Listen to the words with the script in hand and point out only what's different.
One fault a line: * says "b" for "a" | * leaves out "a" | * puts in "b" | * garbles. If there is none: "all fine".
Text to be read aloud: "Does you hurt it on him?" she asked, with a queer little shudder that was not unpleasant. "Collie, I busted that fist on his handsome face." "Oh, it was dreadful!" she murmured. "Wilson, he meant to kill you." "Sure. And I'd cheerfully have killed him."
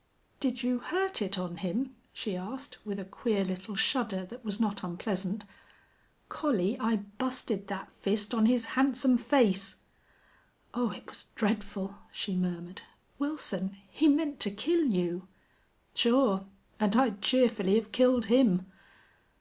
* says "Did" for "Does"